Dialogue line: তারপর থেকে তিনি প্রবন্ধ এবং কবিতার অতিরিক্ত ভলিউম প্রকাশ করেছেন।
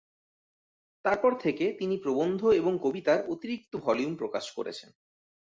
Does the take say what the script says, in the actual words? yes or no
yes